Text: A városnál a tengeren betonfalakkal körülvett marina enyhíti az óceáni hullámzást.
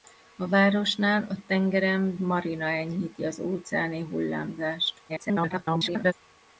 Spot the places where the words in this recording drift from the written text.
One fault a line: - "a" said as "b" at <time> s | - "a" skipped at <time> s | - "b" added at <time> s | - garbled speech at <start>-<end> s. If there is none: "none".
- "betonfalakkal körülvett" skipped at 2.1 s
- garbled speech at 5.1-6.1 s